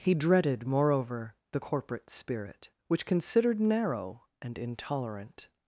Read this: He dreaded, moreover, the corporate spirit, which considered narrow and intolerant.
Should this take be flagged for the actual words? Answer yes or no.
no